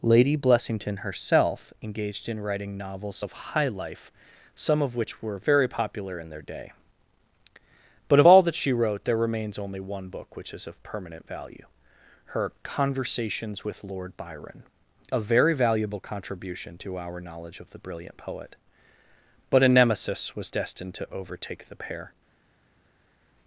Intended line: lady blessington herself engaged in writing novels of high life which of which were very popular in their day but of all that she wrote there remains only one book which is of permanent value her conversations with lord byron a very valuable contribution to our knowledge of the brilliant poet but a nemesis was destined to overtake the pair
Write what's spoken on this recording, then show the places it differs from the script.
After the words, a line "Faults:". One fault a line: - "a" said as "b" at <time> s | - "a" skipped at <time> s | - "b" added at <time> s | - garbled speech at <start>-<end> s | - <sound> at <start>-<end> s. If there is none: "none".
lady blessington herself engaged in writing novels of high life some of which were very popular in their day but of all that she wrote there remains only one book which is of permanent value her conversations with lord byron a very valuable contribution to our knowledge of the brilliant poet but a nemesis was destined to overtake the pair
Faults:
- "which" said as "some" at 4.6 s